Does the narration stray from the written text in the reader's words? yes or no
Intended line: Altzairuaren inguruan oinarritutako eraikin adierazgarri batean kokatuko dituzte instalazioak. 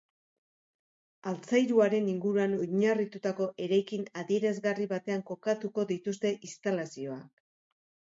no